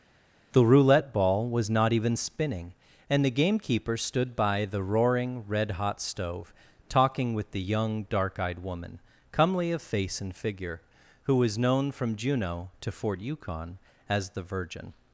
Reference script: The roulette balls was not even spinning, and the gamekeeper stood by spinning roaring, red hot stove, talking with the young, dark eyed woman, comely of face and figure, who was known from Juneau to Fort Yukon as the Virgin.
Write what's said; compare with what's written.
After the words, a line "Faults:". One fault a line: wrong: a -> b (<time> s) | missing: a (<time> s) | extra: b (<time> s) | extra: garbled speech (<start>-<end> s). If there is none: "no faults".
The roulette ball was not even spinning, and the gamekeeper stood by the roaring, red hot stove, talking with the young, dark eyed woman, comely of face and figure, who was known from Juneau to Fort Yukon as the Virgin.
Faults:
wrong: balls -> ball (1.1 s)
wrong: spinning -> the (4.7 s)